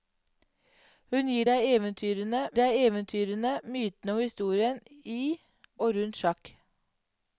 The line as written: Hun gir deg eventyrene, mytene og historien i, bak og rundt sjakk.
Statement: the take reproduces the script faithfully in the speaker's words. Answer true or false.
false